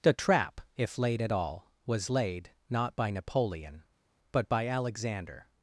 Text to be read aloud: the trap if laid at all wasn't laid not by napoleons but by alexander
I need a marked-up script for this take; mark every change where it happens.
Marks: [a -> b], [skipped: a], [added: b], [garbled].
the trap if laid at all [wasn't -> was] laid not by [napoleons -> napoleon] but by alexander